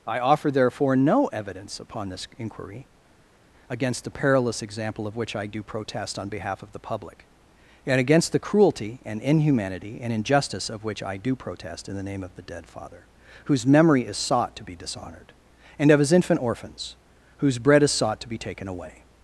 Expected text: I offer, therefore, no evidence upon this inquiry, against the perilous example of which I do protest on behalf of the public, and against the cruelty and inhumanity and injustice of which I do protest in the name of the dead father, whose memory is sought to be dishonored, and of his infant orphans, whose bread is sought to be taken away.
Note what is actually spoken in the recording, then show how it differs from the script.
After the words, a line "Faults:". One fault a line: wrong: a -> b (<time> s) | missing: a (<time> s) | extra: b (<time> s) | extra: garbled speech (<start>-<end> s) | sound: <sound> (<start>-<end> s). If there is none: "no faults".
I offer, therefore, no evidence upon this inquiry, against the perilous example of which I do protest on behalf of the public, and against the cruelty and inhumanity and injustice of which I do protest in the name of the dead father, whose memory is sought to be dishonored, and of his infant orphans, whose bread is sought to be taken away.
Faults:
no faults